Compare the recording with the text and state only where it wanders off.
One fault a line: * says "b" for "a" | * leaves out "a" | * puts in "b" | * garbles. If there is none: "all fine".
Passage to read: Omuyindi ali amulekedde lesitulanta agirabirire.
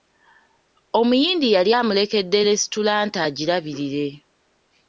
* says "yali" for "ali"